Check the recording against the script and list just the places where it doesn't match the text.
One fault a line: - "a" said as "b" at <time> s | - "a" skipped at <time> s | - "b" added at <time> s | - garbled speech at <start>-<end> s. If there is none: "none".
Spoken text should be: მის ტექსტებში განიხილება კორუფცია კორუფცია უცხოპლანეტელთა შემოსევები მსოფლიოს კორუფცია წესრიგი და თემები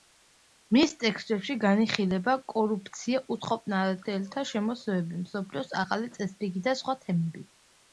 - "კორუფცია" skipped at 3.2 s
- "კორუფცია" said as "ახალი" at 5.8 s
- "სხვა" added at 6.8 s